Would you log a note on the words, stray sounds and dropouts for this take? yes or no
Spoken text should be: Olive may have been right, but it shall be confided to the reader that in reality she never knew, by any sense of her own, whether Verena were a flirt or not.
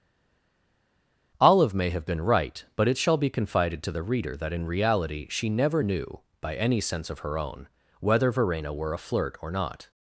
no